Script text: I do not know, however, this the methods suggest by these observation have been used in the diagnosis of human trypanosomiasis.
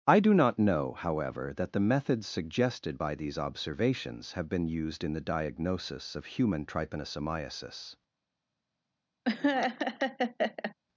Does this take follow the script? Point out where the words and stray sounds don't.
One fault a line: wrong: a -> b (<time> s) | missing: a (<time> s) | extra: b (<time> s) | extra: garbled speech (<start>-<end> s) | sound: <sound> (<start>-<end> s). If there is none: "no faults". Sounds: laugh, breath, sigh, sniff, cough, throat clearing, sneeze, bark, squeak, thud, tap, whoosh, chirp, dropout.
wrong: this -> that (1.6 s)
wrong: suggest -> suggested (2.2 s)
wrong: observation -> observations (3.4 s)
sound: laugh (9.2-10.7 s)